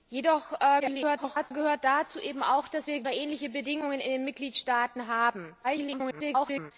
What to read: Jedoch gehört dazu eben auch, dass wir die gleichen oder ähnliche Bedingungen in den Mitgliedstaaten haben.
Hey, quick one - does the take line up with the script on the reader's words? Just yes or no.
no